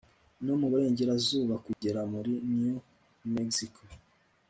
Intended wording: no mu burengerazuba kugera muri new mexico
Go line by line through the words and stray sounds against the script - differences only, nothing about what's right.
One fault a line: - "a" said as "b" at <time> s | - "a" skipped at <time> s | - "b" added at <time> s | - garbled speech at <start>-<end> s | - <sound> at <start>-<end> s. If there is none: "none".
- dropout at 1.7-1.8 s